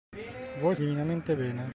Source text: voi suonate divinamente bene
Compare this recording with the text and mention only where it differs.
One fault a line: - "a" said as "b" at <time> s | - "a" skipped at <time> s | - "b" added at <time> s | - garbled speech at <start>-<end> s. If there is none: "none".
- "suonate" skipped at 0.8 s